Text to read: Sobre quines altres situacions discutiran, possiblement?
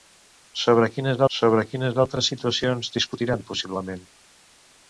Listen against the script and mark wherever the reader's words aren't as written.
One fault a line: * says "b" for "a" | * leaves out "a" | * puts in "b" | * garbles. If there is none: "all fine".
* puts in "sobre quines"